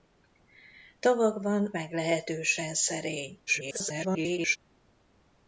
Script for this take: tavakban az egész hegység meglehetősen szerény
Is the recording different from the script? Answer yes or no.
yes